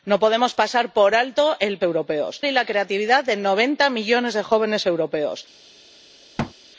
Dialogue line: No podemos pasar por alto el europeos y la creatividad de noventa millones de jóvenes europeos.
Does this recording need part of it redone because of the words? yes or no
no